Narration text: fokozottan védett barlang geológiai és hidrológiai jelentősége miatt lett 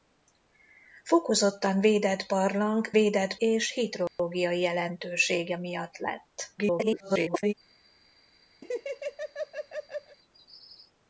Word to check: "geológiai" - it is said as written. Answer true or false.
false